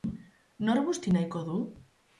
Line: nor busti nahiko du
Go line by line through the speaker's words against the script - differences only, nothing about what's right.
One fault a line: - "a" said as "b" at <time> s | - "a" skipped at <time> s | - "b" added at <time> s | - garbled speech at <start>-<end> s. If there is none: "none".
none